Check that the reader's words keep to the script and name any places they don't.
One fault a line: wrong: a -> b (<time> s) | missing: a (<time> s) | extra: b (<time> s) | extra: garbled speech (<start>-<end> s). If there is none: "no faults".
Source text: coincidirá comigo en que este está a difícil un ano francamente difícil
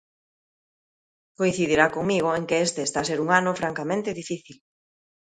wrong: difícil -> ser (3.1 s)